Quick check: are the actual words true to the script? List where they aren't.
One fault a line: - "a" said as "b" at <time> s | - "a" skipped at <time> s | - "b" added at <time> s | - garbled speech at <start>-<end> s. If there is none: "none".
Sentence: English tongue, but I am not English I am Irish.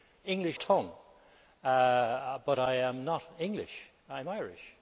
none